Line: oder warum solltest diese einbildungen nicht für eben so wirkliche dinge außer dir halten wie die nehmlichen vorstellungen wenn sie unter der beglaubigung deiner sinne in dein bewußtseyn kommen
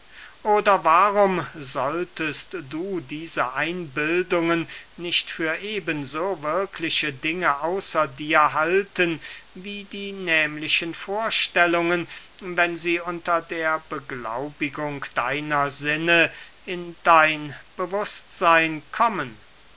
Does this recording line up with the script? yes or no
no